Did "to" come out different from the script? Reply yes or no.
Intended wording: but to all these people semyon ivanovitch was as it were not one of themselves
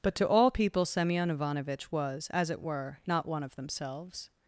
no